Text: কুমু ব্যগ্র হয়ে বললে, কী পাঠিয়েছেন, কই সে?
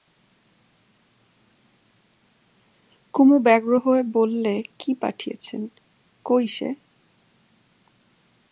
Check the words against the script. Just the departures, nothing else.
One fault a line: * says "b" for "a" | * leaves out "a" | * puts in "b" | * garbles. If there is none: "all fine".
all fine